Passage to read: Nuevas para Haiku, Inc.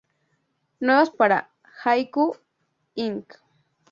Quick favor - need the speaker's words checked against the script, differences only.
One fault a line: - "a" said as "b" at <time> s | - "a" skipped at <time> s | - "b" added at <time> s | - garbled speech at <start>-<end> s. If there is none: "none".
none